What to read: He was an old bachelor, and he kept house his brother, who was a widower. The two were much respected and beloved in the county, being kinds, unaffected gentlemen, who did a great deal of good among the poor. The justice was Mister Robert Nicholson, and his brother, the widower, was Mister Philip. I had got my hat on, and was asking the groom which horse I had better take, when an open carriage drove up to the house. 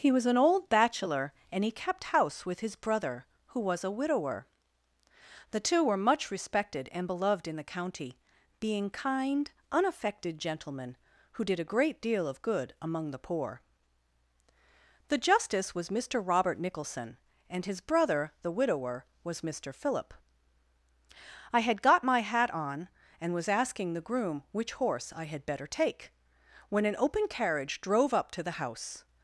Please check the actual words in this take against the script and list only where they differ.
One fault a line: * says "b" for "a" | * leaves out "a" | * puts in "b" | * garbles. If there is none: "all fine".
* puts in "with"
* says "kind" for "kinds"